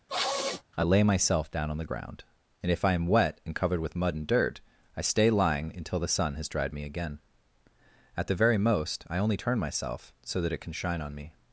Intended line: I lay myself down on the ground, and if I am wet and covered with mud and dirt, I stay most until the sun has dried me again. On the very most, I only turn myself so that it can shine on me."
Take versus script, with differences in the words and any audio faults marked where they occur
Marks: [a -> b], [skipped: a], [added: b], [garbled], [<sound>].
[sniff] I lay myself down on the ground, and if I am wet and covered with mud and dirt, I stay [most -> lying] until the sun has dried me again. [On -> At] the very most, I only turn myself so that it can shine on me."